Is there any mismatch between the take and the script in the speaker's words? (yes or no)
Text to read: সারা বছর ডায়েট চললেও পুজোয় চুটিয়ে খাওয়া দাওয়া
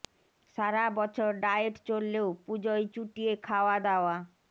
no